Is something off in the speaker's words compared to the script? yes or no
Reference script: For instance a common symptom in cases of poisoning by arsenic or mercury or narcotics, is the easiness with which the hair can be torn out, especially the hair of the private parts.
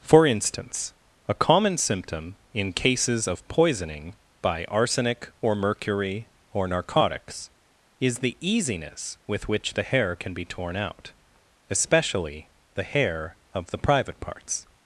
no